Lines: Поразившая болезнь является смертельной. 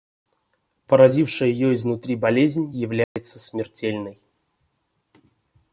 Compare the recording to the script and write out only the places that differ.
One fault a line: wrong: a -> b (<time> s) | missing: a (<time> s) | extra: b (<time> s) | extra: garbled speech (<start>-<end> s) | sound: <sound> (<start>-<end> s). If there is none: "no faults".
extra: ее изнутри (1.5 s)
sound: dropout (3.0-3.2 s)